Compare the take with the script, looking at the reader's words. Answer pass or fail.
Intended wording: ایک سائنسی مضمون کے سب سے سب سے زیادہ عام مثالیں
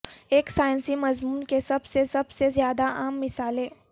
pass